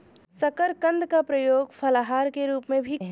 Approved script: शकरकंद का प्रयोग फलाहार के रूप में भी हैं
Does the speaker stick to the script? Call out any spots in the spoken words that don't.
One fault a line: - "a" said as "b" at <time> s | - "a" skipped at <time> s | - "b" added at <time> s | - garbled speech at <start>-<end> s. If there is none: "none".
none